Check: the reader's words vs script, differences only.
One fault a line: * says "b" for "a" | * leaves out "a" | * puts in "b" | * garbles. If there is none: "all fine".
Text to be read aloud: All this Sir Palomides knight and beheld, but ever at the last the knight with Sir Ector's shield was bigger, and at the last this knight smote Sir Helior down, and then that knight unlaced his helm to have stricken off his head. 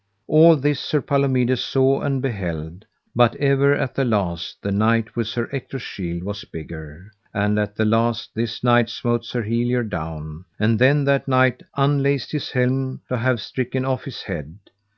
* says "saw" for "knight"